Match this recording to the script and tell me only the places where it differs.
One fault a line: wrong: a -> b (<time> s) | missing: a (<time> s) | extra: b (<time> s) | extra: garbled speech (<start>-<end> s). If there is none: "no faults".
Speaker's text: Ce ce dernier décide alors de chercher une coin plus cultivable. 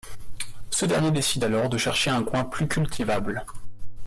missing: ce (0.9 s)
wrong: une -> un (2.1 s)